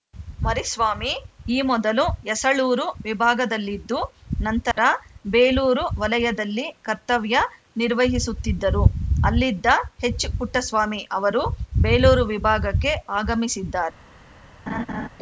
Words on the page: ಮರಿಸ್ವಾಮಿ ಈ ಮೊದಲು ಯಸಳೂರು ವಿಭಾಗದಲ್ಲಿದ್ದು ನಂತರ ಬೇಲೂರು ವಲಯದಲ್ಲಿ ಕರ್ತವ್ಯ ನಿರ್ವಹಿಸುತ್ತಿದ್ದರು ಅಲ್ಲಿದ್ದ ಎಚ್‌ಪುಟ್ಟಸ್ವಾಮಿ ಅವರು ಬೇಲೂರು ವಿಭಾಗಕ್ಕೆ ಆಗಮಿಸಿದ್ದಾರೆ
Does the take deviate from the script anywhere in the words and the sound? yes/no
yes